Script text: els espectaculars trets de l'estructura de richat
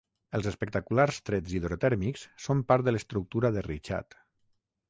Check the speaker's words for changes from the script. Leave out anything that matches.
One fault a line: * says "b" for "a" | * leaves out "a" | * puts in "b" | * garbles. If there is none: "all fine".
* puts in "hidrotèrmics són part"